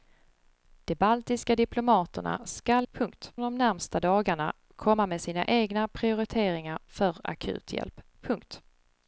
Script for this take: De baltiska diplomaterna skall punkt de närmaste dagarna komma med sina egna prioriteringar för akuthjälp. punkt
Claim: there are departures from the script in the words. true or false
false